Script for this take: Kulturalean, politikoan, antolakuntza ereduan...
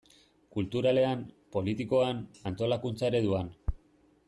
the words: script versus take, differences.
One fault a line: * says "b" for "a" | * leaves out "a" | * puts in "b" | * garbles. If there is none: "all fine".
all fine